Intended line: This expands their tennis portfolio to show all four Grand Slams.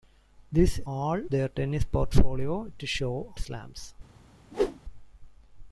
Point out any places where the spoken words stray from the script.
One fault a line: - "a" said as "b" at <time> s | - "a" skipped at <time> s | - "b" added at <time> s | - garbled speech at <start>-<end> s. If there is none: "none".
- "expands" said as "all" at 0.8 s
- "all four Grand" skipped at 3.3 s